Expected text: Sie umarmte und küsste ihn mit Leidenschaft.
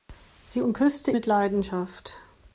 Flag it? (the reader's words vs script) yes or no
yes